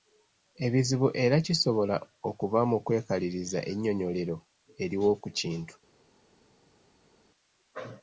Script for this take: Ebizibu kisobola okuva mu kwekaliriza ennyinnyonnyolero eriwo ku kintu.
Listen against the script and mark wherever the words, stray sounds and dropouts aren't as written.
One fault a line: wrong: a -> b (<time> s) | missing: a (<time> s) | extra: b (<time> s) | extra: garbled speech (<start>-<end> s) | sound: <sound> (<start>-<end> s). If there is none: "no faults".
extra: era (1.2 s)